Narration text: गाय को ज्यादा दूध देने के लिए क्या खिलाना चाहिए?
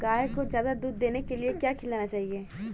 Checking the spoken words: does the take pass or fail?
pass